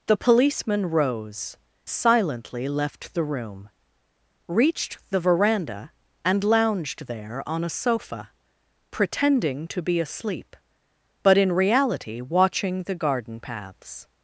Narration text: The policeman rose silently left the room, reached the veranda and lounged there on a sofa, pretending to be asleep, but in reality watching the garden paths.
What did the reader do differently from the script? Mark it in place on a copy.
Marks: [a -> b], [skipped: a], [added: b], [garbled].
The policeman rose silently left the room, reached the veranda and lounged there on a sofa, pretending to be asleep, but in reality watching the garden paths.